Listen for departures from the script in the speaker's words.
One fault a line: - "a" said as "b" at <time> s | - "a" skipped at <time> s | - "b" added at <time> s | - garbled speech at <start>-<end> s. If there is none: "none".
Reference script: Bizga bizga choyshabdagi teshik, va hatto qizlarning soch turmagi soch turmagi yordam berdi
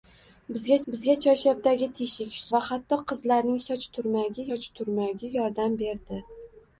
none